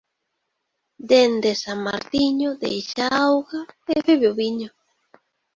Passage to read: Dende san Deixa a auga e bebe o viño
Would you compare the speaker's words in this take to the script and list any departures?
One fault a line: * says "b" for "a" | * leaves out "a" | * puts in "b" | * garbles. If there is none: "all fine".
* puts in "Martiño"